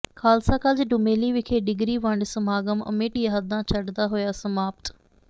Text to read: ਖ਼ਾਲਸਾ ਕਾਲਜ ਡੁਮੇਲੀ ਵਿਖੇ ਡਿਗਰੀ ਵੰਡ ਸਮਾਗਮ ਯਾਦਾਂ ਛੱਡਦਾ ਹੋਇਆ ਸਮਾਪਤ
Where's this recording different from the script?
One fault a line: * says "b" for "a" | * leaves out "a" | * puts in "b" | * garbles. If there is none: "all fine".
* puts in "ਅਮਿੱਟ"